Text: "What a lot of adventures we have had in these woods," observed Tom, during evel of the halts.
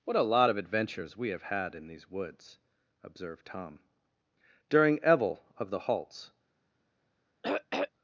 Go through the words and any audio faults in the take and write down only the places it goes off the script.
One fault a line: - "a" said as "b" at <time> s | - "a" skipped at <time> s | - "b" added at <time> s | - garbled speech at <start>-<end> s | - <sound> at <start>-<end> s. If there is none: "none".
- throat clearing at 7.4-7.9 s